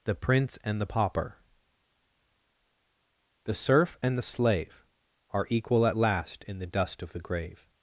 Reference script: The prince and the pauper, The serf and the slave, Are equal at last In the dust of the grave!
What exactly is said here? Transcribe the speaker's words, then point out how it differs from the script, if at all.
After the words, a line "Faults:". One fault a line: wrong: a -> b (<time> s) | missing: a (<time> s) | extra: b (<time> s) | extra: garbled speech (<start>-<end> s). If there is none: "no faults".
The prince and the pauper, The serf and the slave, Are equal at last In the dust of the grave!
Faults:
no faults